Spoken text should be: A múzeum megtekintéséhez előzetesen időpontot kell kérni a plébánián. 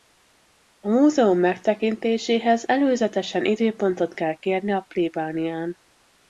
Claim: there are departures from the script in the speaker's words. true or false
false